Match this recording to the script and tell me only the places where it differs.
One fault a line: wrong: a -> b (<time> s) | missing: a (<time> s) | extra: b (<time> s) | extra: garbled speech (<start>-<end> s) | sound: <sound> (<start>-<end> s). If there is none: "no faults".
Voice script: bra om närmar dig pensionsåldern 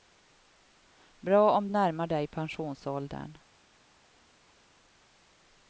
no faults